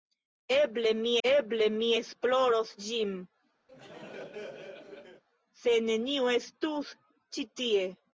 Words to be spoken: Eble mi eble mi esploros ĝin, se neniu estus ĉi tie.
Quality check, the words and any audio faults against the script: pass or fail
fail